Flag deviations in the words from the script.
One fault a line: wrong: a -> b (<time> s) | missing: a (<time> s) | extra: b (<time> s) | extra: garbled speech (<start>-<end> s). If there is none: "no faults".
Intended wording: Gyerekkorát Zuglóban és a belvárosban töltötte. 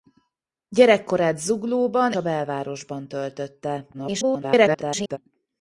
missing: és (2.1 s)
extra: garbled speech (3.9-5.2 s)